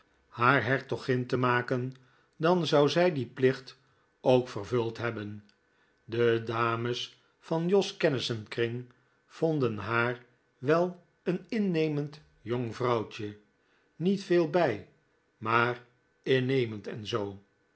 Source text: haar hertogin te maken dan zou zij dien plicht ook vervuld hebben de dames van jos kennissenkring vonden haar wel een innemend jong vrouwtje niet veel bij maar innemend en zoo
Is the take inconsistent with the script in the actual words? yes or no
no